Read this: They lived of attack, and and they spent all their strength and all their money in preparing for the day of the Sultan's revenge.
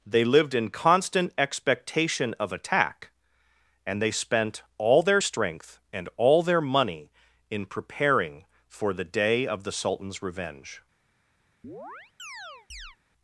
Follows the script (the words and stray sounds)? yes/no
no